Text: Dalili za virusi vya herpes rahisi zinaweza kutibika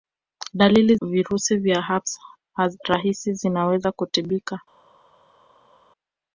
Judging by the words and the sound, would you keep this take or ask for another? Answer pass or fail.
fail